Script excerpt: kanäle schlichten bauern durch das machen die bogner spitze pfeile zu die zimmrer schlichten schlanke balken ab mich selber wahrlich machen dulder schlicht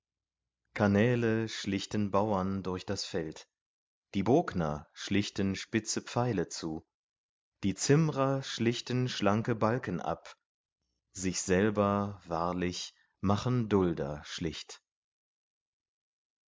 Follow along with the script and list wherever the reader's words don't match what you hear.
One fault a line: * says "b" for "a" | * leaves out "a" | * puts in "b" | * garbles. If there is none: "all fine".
* says "feld" for "machen"
* puts in "schlichten"
* says "sich" for "mich"